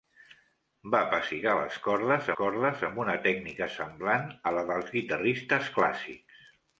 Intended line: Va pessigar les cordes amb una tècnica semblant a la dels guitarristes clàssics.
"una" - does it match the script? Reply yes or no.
yes